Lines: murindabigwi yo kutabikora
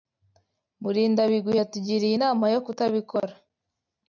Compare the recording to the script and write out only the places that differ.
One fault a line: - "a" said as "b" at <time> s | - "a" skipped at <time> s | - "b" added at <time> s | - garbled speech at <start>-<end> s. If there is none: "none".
- "yatugiriye inama" added at 1.6 s